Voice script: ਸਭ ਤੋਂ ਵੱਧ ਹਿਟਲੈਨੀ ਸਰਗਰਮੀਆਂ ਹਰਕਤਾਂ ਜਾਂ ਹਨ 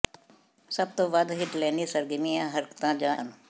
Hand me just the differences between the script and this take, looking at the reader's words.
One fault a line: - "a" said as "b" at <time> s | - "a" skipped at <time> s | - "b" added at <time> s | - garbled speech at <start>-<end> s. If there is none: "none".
none